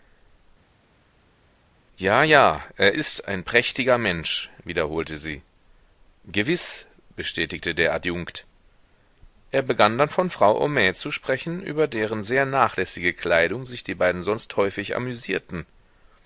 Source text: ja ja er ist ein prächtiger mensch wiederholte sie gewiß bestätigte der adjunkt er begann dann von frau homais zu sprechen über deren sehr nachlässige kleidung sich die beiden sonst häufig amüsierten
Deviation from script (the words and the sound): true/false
false